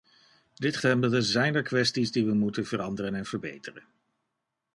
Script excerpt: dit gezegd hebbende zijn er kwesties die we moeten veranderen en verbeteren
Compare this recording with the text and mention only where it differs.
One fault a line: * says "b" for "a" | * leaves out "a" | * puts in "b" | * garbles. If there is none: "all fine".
* leaves out "gezegd"